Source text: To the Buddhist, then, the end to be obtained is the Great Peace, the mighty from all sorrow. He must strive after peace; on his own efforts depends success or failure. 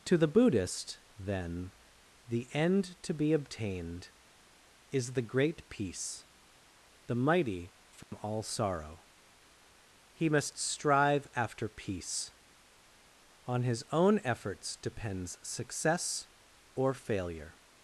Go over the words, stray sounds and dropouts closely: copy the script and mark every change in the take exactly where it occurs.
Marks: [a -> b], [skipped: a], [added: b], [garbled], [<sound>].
To the Buddhist, then, the end to be obtained is the Great Peace, the mighty from [dropout] all sorrow. He must strive after peace; on his own efforts depends success or failure.